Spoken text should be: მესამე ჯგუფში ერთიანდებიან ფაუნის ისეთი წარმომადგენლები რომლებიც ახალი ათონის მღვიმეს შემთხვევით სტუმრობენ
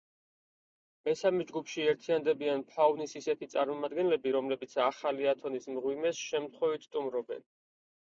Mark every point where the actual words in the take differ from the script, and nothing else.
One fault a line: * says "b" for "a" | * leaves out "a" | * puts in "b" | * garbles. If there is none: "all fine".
all fine